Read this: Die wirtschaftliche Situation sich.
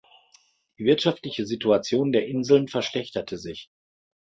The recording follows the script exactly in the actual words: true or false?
false